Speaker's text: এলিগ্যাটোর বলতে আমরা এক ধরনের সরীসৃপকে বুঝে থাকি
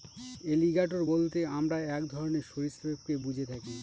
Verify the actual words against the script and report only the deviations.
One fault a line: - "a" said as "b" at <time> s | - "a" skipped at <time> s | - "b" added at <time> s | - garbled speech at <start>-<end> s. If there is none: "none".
none